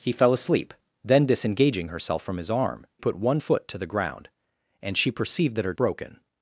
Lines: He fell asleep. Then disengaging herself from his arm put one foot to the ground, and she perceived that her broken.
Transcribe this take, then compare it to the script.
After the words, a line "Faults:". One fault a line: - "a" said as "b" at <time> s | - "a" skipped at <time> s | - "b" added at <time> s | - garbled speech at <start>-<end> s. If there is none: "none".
He fell asleep. Then disengaging herself from his arm put one foot to the ground, and she perceived that her broken.
Faults:
none